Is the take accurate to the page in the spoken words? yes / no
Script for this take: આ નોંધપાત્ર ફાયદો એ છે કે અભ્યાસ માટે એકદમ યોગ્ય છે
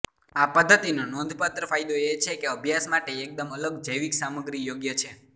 no